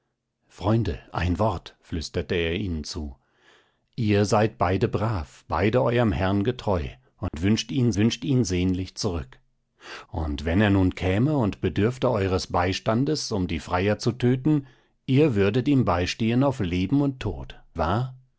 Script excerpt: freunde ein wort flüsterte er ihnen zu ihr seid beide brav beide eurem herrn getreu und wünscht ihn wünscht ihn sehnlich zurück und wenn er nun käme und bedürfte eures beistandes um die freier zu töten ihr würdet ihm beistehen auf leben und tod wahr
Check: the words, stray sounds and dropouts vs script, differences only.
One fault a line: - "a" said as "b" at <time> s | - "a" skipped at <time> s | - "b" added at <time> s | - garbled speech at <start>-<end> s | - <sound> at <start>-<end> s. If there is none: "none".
- dropout at 7.3-7.3 s